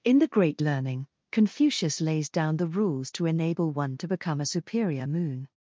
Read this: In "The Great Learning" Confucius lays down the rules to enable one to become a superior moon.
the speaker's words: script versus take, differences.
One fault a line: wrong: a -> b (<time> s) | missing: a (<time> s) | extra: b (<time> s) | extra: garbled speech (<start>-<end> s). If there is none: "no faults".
no faults